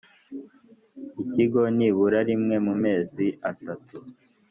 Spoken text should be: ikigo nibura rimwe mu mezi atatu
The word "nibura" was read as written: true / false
true